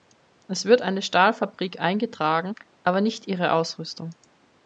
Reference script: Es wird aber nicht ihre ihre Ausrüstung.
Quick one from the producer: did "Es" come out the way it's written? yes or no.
yes